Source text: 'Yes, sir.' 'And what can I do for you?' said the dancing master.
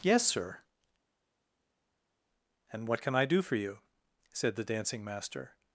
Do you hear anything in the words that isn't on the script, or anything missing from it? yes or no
no